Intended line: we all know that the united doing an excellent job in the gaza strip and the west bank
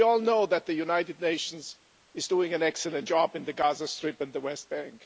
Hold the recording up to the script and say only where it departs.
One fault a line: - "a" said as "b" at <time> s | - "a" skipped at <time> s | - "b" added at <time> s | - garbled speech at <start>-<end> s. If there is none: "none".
- "nations is" added at 1.2 s